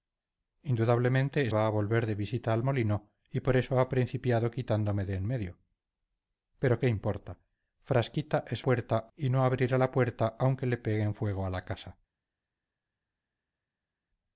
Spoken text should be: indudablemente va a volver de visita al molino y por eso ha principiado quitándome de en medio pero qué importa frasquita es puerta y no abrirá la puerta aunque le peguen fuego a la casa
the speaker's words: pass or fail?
pass